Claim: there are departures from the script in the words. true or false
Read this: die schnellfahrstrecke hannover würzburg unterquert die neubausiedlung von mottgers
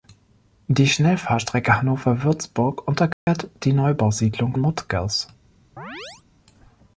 true